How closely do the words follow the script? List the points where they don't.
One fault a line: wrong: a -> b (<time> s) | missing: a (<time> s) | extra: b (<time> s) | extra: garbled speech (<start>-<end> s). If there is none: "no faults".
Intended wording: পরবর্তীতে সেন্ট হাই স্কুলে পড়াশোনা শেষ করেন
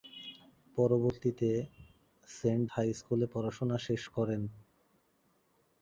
no faults